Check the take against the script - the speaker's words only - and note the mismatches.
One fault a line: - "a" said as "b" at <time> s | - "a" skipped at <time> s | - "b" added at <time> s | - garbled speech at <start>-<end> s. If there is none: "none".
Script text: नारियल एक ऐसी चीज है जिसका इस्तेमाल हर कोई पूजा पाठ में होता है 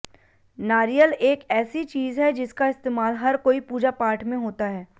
none